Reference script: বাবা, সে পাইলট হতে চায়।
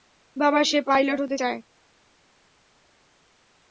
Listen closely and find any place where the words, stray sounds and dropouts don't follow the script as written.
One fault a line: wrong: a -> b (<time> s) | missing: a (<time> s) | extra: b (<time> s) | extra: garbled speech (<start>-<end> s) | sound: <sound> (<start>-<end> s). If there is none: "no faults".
no faults